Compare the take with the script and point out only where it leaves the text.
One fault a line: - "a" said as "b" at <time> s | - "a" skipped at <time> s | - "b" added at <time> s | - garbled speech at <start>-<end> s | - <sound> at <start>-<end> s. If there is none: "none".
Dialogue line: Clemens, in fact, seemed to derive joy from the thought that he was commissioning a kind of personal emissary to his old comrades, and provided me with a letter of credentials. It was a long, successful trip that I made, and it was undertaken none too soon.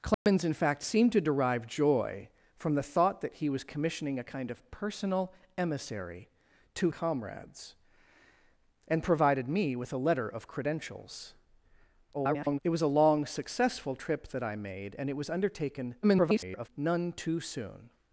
- dropout at 0.1-0.3 s
- "his old" skipped at 6.9 s
- garbled speech at 12.1-12.6 s
- garbled speech at 16.0-16.7 s